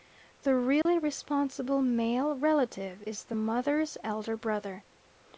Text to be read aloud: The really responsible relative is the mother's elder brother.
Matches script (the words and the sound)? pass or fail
fail